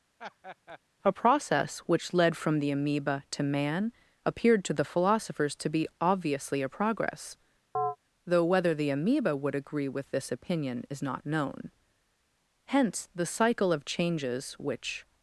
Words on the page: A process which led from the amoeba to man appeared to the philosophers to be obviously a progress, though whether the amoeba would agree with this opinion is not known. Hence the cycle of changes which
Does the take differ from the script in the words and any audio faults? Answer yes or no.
yes